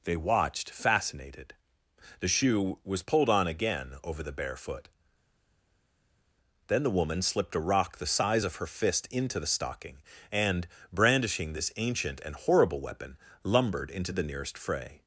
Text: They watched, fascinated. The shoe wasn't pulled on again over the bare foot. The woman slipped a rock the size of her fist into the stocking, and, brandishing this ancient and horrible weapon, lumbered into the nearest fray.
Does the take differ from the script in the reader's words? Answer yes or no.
yes